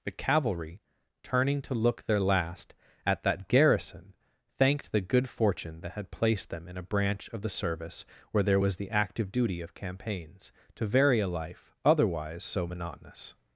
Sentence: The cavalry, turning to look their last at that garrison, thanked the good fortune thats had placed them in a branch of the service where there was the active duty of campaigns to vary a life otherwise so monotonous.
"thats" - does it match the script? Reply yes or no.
no